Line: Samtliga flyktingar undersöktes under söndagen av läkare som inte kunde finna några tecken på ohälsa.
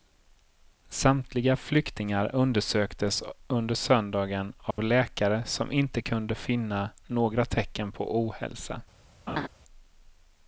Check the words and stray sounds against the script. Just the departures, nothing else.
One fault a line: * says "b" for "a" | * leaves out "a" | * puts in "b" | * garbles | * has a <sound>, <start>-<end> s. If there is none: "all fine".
* has a dropout, 4.7-4.8 s
* has a laugh, 9.3-9.5 s